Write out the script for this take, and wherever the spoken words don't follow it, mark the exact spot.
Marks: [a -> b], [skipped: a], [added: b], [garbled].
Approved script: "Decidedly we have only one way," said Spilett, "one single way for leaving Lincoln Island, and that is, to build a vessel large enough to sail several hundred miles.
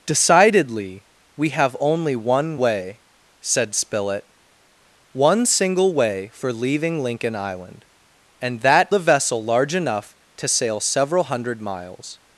"Decidedly we have only one way," said Spilett, "one single way for leaving Lincoln Island, and that [skipped: is, to build] a vessel large enough to sail several hundred miles.